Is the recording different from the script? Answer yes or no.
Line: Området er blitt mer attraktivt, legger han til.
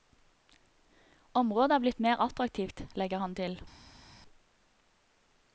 no